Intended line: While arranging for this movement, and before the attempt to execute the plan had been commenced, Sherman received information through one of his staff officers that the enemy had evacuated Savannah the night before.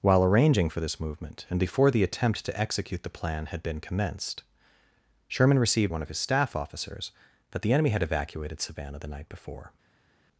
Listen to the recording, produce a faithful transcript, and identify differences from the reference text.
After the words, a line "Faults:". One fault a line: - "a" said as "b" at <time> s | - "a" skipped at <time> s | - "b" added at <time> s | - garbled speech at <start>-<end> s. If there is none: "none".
While arranging for this movement, and before the attempt to execute the plan had been commenced, Sherman received one of his staff officers that the enemy had evacuated Savannah the night before.
Faults:
- "information through" skipped at 5.9 s